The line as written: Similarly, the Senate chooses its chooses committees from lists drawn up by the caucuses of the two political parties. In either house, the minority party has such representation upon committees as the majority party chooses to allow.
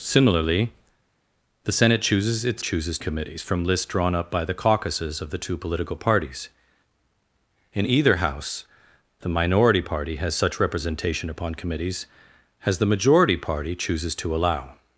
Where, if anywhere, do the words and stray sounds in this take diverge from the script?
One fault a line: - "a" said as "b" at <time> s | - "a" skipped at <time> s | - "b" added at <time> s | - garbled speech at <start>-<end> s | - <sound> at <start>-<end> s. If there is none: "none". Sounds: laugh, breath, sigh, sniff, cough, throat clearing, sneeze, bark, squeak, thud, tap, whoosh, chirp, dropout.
none